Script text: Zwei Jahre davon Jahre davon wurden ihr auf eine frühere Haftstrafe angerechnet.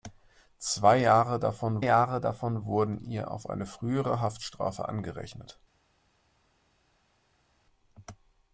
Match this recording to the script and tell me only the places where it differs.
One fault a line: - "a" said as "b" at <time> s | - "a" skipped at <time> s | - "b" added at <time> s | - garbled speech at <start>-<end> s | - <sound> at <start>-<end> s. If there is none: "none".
none